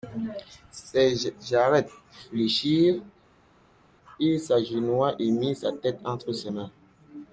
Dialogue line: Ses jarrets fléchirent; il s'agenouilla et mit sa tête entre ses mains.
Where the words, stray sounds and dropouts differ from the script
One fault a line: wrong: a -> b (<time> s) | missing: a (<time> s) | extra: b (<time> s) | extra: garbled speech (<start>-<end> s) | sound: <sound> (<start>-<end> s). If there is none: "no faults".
no faults